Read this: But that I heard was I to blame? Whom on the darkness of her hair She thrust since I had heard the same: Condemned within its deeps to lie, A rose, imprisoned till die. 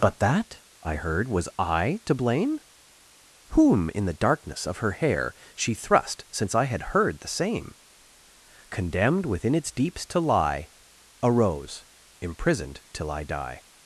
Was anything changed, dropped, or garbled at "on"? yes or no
yes